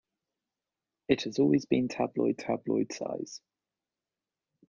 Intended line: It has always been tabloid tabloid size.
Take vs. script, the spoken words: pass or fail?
pass